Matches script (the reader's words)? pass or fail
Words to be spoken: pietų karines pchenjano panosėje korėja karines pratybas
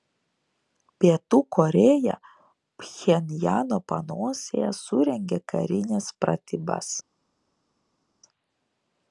fail